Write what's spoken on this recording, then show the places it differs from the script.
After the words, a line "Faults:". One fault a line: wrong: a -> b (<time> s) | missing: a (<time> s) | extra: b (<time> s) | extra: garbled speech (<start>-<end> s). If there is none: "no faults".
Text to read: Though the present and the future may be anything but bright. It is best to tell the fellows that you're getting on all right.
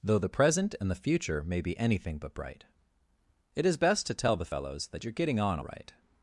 Though the present and the future may be anything but bright. It is best to tell the fellows that you're getting on right.
Faults:
missing: all (5.6 s)